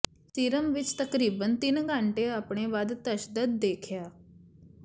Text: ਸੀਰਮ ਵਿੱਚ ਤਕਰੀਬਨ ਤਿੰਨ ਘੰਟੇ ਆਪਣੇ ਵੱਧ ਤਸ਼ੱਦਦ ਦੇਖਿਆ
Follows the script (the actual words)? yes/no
yes